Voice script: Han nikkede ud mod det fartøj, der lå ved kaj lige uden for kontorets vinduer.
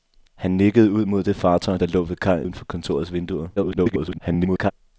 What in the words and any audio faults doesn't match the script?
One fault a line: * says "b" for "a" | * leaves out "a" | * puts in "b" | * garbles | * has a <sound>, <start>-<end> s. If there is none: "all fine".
* leaves out "lige"
* garbles